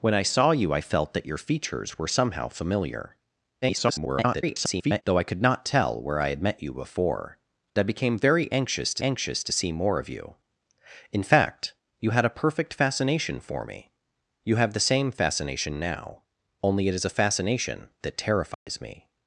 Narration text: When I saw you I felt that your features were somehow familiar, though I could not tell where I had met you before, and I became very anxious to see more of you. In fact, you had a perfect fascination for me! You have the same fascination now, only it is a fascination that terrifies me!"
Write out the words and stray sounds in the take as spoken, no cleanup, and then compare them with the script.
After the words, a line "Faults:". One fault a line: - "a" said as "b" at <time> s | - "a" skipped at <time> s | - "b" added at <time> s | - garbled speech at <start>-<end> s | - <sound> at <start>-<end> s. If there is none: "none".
When I saw you I felt that your features were somehow familiar, [garbled] though I could not tell where I had met you before, I became very anxious to anxious to see more of you. In fact, you had a perfect fascination for me! You have the same fascination now, only it is a fascination that terrifies me!"
Faults:
- garbled speech at 3.6-5.0 s
- "and" skipped at 7.4 s
- "anxious to" added at 9.0 s
- dropout at 18.5-18.7 s